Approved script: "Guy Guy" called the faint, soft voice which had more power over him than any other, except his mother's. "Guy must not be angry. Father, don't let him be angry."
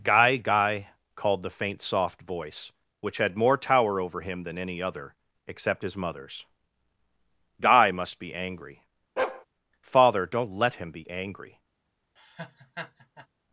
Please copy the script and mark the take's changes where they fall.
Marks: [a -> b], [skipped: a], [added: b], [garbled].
"Guy Guy" called the faint, soft voice which had more [power -> tower] over him than any other, except his mother's. "Guy must [skipped: not] be angry. Father, don't let him be angry."